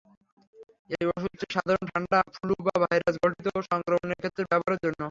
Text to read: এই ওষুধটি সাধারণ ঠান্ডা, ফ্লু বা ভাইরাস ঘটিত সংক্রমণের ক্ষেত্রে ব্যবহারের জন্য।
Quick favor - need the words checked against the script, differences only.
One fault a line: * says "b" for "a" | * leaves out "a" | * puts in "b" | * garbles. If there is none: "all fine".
all fine